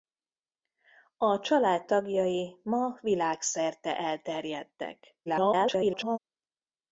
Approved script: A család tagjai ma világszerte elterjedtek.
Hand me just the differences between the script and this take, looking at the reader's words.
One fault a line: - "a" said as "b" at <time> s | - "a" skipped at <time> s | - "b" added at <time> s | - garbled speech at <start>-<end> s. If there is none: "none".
- garbled speech at 5.3-6.2 s